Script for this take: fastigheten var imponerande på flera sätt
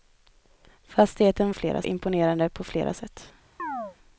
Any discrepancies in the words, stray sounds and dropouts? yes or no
yes